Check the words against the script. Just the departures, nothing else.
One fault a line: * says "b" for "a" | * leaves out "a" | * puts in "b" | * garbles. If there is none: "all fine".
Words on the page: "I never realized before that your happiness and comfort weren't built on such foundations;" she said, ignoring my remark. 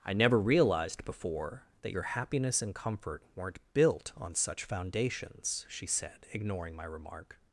all fine